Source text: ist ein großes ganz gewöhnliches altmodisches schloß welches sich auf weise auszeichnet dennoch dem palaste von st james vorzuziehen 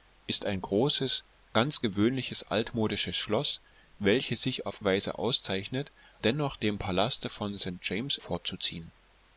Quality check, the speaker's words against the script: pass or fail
pass